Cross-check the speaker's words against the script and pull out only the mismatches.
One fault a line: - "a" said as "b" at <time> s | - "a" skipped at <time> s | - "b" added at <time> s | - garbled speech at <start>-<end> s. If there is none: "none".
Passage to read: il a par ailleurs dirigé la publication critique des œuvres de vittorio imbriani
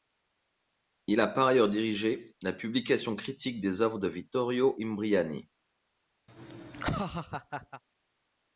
none